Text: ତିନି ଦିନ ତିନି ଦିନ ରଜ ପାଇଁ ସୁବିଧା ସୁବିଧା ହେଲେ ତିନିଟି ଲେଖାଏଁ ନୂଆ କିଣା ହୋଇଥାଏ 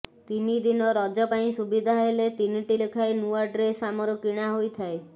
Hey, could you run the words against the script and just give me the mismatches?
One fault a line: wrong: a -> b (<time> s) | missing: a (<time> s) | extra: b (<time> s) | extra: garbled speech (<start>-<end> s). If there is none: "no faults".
missing: ତିନି ଦିନ (0.8 s)
missing: ସୁବିଧା (1.9 s)
extra: ଡ୍ରେସ୍ ଆମର (3.5 s)